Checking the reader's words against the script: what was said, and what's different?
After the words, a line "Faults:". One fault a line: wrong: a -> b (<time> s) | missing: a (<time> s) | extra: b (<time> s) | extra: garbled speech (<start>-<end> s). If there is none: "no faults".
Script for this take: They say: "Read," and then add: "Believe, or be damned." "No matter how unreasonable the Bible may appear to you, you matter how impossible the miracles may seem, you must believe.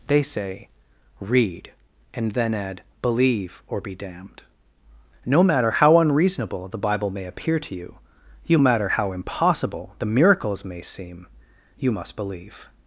They say: "Read," and then add: "Believe, or be damned." "No matter how unreasonable the Bible may appear to you, you matter how impossible the miracles may seem, you must believe.
Faults:
no faults